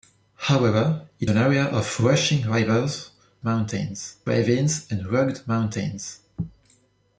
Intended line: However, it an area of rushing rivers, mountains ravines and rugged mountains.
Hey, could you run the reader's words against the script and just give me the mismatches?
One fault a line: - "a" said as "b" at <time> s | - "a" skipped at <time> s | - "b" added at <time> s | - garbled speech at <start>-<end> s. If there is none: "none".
none